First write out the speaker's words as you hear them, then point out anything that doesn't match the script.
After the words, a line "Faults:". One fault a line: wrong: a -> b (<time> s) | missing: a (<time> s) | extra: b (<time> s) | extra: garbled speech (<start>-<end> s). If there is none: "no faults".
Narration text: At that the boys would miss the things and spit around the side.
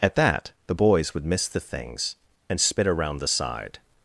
At that the boys would miss the things and spit around the side.
Faults:
no faults